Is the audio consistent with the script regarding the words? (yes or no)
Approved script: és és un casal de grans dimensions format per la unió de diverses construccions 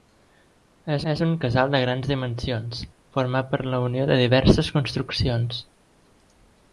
yes